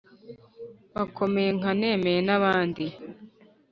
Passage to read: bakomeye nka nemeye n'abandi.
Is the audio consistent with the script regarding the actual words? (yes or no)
yes